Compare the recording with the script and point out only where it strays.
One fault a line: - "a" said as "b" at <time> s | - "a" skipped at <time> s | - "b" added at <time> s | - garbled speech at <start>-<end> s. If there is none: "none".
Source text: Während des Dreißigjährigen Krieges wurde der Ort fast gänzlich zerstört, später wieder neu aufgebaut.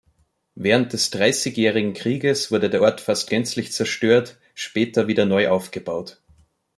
none